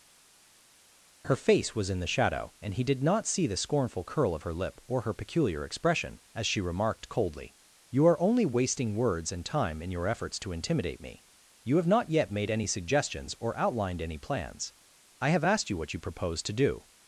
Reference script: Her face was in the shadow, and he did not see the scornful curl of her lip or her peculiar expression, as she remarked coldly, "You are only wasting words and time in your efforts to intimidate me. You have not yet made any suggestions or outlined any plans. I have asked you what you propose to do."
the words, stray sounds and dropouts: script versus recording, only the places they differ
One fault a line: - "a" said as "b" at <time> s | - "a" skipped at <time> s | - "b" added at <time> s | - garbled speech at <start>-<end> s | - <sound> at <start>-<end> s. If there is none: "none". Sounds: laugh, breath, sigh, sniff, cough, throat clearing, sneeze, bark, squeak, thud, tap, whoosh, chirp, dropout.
none